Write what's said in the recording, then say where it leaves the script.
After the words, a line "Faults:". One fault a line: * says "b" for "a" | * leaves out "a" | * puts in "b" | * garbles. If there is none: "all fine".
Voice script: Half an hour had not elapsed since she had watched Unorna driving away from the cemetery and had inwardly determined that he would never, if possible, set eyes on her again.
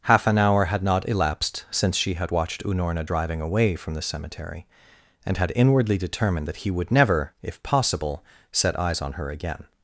Half an hour had not elapsed since she had watched Unorna driving away from the cemetery and had inwardly determined that he would never, if possible, set eyes on her again.
Faults:
all fine